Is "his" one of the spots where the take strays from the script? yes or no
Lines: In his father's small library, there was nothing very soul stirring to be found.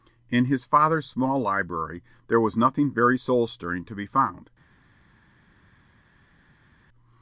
no